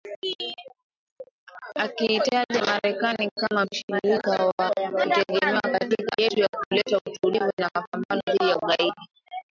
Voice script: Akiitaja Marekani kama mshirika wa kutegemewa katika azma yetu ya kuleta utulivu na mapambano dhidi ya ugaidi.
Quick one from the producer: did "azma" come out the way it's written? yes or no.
no